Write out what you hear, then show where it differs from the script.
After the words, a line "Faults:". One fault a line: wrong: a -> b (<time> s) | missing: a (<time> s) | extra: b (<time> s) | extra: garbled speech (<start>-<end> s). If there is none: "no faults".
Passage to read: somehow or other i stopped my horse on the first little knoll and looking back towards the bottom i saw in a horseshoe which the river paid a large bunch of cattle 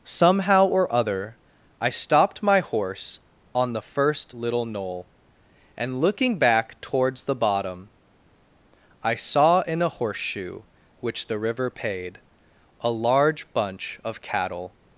somehow or other i stopped my horse on the first little knoll and looking back towards the bottom i saw in a horseshoe which the river paid a large bunch of cattle
Faults:
no faults